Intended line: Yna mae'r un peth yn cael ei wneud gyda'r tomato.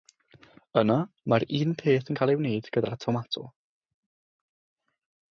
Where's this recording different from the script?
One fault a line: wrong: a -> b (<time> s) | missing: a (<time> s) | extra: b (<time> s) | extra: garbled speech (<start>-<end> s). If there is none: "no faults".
no faults